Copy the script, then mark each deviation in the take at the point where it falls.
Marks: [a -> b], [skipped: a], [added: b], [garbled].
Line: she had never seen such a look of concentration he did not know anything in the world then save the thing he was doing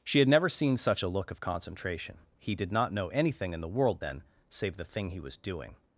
she had never seen such a look of concentration he did not know anything in the world then save the thing he was doing